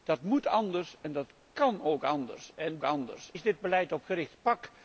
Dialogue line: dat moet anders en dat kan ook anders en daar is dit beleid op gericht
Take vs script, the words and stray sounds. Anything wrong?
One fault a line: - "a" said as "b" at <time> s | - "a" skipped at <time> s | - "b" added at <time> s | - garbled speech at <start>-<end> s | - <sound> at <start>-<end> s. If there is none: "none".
- "daar" said as "anders" at 2.8 s